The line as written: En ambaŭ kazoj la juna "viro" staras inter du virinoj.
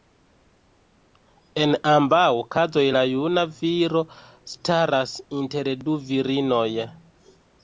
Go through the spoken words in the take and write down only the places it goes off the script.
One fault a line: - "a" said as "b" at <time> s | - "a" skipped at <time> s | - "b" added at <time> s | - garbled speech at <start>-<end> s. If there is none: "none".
none